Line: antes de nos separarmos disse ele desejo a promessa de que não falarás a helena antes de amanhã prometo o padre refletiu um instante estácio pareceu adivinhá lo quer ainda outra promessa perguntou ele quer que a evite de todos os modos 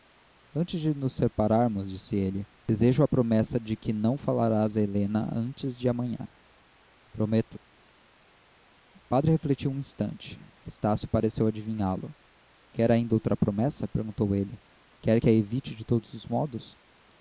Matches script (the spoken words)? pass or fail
pass